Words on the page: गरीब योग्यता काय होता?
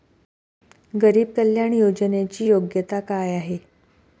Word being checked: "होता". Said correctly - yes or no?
no